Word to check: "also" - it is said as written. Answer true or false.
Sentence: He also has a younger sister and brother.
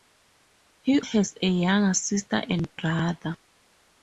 false